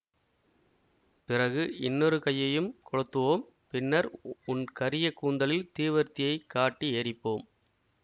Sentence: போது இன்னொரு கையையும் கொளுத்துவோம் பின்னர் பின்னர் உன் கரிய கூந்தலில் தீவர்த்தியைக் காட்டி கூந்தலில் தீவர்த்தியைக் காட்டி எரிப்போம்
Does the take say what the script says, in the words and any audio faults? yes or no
no